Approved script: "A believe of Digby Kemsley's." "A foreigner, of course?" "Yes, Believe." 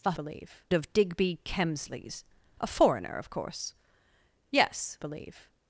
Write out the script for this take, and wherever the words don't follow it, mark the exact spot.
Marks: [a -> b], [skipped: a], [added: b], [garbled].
"A believe of Digby Kemsley's." "A foreigner, of course?" "Yes, Believe."